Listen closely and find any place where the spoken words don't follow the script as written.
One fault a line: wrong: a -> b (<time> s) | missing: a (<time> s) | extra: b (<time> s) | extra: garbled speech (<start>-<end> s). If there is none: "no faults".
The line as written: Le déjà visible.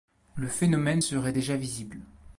extra: phénomène serait (0.5 s)